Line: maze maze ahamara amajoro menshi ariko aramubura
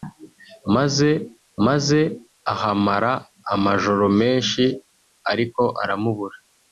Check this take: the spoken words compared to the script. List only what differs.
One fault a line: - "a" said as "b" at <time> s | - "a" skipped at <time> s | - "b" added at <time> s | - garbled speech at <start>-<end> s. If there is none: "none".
none